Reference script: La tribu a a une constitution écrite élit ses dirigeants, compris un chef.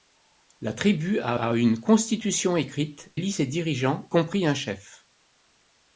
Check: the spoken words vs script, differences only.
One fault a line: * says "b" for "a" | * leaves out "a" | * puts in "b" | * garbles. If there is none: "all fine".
all fine